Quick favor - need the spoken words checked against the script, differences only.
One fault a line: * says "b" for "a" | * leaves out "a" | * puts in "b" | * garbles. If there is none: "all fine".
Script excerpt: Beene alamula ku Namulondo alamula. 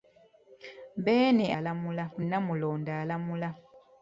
all fine